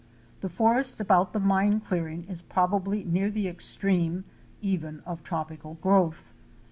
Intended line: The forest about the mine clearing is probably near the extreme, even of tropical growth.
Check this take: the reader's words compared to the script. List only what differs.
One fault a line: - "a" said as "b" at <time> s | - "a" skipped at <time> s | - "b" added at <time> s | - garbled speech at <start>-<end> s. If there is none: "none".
none